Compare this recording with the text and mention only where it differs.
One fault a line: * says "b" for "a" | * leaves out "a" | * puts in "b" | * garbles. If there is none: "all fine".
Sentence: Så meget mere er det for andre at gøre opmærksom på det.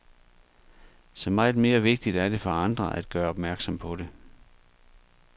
* puts in "vigtigt"